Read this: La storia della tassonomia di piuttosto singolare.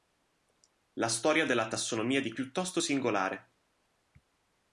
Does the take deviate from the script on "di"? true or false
false